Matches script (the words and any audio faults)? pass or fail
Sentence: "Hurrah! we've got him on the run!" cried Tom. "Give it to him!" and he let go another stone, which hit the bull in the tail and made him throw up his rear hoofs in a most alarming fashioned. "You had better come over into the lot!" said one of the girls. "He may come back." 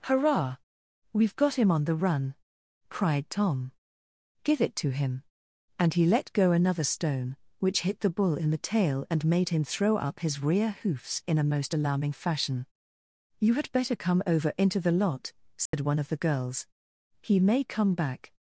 fail